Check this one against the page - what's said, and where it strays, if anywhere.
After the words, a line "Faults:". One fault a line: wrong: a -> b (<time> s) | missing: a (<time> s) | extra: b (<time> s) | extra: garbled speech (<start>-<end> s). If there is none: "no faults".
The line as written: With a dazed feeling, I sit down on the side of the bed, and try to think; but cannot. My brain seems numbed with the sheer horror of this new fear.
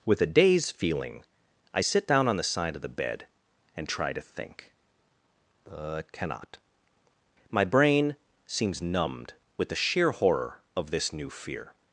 With a dazed feeling, I sit down on the side of the bed, and try to think; but cannot. My brain seems numbed with the sheer horror of this new fear.
Faults:
no faults